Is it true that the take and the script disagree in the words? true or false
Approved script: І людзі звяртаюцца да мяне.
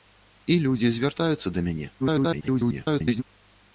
true